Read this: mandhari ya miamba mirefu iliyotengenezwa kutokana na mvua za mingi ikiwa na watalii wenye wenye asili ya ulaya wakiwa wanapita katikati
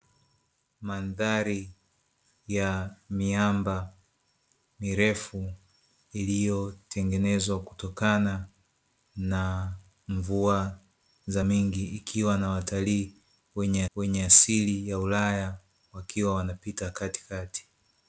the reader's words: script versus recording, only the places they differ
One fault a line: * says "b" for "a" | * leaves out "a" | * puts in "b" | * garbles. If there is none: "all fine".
all fine